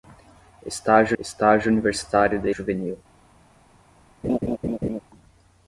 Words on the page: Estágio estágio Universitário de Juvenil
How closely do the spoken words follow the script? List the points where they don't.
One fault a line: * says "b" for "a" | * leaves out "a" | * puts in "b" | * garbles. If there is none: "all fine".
all fine